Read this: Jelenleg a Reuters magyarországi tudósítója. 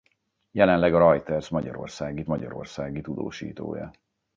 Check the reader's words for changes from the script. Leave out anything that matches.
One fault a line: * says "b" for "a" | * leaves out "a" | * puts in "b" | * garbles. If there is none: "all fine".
* puts in "magyarországi"